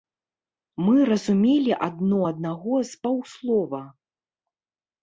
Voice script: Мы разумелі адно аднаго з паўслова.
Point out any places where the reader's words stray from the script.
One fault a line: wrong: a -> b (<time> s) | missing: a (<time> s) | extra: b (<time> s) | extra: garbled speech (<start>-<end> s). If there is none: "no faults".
no faults